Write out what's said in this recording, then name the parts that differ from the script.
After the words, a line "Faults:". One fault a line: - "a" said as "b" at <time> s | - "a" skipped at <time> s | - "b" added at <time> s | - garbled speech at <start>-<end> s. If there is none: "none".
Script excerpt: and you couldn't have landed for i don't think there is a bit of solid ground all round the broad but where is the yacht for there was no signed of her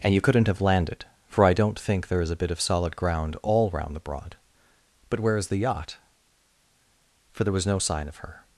and you couldn't have landed for i don't think there is a bit of solid ground all round the broad but where is the yacht for there was no sign of her
Faults:
- "signed" said as "sign" at 7.8 s